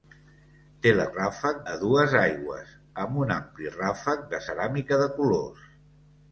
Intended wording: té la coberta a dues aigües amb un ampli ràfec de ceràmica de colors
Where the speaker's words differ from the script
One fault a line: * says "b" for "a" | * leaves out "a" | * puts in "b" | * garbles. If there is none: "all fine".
* says "ràfec" for "coberta"